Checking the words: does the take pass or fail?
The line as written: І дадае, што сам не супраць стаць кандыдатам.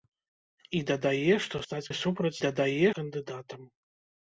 fail